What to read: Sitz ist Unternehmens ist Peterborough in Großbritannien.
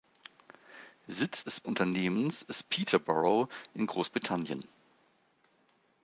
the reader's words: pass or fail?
pass